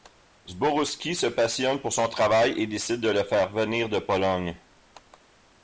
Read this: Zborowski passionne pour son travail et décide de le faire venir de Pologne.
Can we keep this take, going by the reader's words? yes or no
no